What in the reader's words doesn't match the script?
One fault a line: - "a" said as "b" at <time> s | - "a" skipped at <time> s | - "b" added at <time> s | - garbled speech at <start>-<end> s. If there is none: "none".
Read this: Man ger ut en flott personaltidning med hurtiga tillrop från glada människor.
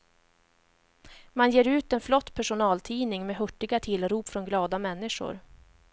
none